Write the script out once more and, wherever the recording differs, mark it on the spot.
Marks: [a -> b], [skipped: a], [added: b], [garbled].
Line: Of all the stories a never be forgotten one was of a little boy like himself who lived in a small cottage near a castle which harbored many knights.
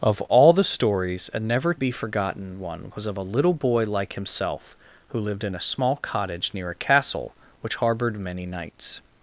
Of all the stories a never be forgotten one was of a little boy like himself who lived in a small cottage near a castle which harbored many knights.